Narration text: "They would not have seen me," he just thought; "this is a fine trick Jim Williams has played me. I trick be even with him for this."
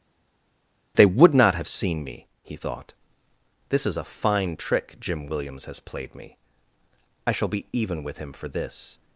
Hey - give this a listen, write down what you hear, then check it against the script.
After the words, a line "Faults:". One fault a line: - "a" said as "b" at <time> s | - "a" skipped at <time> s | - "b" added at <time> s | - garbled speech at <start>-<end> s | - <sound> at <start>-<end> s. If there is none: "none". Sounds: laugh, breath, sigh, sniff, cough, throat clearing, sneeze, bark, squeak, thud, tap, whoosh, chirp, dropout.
"They would not have seen me," he thought; "this is a fine trick Jim Williams has played me. I shall be even with him for this."
Faults:
- "just" skipped at 2.6 s
- "trick" said as "shall" at 7.3 s